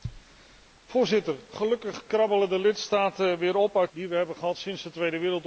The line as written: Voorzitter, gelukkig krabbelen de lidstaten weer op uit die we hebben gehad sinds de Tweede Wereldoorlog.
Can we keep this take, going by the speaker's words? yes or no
yes